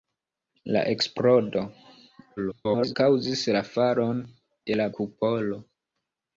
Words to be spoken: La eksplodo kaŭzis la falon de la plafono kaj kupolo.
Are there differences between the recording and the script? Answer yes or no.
yes